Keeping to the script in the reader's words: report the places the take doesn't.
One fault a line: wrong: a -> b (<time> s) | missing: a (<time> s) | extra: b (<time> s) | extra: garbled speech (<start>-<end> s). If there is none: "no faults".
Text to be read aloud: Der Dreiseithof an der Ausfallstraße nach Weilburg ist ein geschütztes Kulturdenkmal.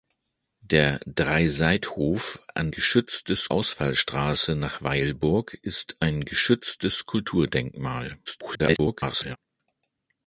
wrong: der -> geschütztes (2.7 s)
extra: garbled speech (8.3-9.4 s)